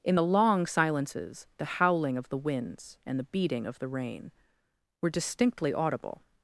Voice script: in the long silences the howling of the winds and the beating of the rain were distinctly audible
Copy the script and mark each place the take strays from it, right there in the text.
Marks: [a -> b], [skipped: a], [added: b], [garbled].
in the long silences the howling of the winds and the beating of the rain were distinctly audible